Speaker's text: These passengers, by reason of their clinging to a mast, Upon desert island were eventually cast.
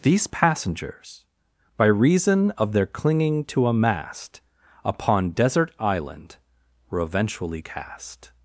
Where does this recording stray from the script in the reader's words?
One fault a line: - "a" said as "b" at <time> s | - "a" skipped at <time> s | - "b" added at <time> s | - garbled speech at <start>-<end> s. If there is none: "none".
none